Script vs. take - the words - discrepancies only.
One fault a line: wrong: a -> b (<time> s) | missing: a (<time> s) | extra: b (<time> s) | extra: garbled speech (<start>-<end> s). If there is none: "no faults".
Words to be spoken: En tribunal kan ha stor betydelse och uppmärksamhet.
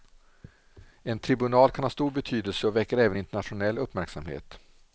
extra: väcker även internationell (2.7 s)